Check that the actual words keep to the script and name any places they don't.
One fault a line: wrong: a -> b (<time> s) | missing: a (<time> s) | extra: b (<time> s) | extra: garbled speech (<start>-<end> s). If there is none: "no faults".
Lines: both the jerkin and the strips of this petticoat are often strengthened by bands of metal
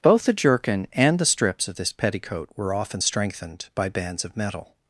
wrong: are -> were (2.5 s)